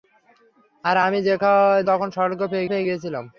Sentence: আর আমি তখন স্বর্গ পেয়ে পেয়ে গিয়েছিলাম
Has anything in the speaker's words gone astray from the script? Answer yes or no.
no